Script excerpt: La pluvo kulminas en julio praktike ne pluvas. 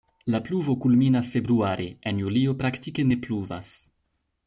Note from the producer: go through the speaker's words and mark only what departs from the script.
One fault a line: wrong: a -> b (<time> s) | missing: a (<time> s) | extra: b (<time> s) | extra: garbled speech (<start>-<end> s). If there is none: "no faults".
extra: februare (1.4 s)